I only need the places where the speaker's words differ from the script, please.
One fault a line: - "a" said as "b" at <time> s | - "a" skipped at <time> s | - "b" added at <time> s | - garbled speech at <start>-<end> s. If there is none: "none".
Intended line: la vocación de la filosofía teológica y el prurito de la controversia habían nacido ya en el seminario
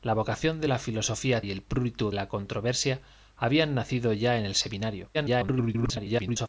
- "teológica" skipped at 1.4 s
- "de" skipped at 2.1 s
- garbled speech at 5.1-6.5 s